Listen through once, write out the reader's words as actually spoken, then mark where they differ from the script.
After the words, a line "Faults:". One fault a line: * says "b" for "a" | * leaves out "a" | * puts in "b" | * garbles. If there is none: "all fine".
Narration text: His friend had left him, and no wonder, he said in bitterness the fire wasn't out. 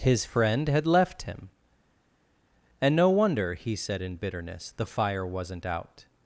His friend had left him, and no wonder, he said in bitterness the fire wasn't out.
Faults:
all fine